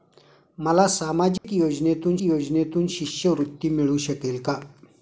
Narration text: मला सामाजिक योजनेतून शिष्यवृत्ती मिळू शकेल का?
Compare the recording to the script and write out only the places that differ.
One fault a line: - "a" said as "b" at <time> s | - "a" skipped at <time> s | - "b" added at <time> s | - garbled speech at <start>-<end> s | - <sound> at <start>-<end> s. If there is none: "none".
- dropout at 1.4-1.4 s
- "योजनेतून" added at 2.2 s